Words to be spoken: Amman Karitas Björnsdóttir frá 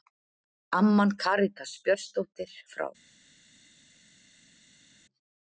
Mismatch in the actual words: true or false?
false